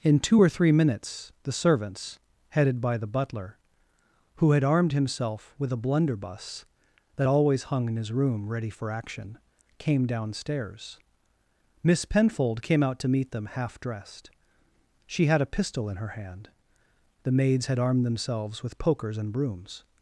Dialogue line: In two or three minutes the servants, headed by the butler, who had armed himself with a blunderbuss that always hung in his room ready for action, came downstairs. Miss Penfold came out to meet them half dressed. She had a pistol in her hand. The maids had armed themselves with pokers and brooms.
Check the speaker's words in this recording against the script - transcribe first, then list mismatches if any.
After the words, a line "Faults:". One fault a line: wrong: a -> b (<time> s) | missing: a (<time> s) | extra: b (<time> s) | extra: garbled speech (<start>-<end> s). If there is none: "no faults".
In two or three minutes the servants, headed by the butler, who had armed himself with a blunderbuss that always hung in his room ready for action, came downstairs. Miss Penfold came out to meet them half dressed. She had a pistol in her hand. The maids had armed themselves with pokers and brooms.
Faults:
no faults